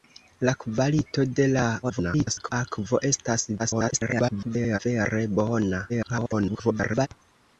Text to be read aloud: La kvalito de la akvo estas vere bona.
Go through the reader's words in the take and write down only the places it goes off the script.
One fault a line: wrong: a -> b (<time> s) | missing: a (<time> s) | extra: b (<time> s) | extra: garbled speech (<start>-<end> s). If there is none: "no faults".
extra: garbled speech (1.8-2.5 s)
extra: garbled speech (3.6-4.8 s)
extra: garbled speech (5.9-7.1 s)